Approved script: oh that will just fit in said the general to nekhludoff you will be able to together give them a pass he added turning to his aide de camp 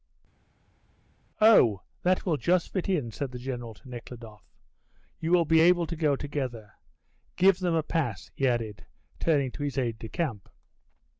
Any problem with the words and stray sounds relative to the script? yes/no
yes